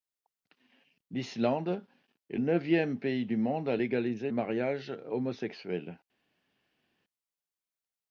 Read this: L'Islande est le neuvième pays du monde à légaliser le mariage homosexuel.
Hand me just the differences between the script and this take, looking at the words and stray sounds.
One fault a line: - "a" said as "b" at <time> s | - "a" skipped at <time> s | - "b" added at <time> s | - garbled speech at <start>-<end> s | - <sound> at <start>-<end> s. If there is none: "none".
- "le" skipped at 2.4 s
- "le" skipped at 4.3 s